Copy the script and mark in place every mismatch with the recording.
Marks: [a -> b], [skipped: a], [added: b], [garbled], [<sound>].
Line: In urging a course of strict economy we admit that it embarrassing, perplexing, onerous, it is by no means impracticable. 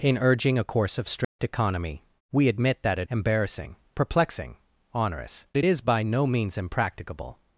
In urging a course of strict [dropout] economy we admit that it embarrassing, perplexing, onerous, it is by no means impracticable.